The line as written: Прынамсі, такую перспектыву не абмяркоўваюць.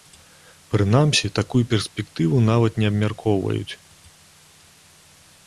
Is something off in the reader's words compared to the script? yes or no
yes